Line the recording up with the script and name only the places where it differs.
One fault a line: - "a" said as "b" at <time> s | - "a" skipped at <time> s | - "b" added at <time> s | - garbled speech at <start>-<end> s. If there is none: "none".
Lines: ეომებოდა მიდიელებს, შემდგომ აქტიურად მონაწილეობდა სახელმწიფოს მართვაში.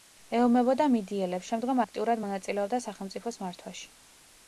none